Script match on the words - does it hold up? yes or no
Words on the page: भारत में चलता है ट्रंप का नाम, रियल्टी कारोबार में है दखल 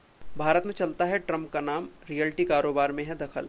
yes